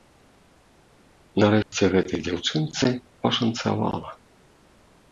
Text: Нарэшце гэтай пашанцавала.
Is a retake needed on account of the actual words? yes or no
yes